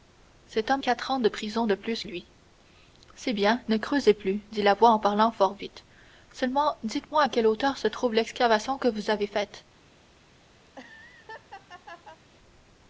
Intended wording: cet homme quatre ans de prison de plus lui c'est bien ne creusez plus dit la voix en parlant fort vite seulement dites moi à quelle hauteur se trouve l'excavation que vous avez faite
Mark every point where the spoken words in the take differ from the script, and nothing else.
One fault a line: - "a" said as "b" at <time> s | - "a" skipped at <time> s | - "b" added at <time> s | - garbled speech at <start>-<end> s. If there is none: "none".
none